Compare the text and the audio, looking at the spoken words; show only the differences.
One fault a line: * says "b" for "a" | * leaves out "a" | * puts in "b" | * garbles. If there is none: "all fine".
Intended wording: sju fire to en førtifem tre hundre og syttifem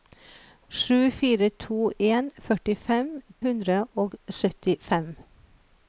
* leaves out "tre"